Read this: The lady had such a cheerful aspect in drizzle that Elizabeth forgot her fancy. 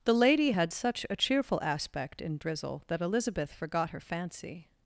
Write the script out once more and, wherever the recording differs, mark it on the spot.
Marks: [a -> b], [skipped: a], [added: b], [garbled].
The lady had such a cheerful aspect in drizzle that Elizabeth forgot her fancy.